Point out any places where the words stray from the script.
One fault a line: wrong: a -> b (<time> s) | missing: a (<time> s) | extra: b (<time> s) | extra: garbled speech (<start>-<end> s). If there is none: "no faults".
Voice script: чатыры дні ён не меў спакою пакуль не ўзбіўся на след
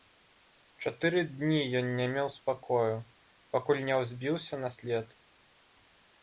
no faults